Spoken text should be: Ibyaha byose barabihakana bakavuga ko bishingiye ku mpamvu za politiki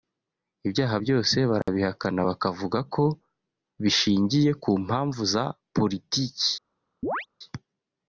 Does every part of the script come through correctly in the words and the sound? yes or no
no